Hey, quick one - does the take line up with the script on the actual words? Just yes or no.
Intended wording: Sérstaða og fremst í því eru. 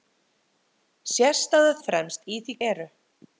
yes